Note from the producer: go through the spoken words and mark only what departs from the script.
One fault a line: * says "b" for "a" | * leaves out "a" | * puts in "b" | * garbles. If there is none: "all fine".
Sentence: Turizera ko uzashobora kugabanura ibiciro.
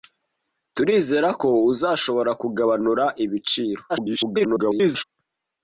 * garbles